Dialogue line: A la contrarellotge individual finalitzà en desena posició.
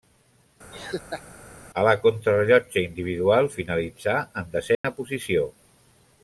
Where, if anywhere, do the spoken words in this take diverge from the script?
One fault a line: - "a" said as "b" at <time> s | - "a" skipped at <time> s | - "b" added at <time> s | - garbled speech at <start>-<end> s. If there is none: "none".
none